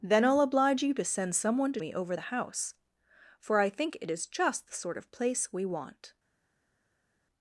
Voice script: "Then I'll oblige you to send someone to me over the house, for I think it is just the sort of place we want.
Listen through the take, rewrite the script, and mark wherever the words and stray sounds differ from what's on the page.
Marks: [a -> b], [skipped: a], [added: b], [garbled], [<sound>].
"Then I'll oblige you to send someone to me over the house, for I think it is just the sort of place we want.